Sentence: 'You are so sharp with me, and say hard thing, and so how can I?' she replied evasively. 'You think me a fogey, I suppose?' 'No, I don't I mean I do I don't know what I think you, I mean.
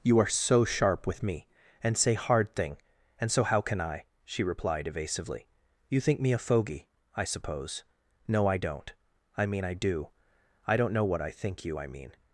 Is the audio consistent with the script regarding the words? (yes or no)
yes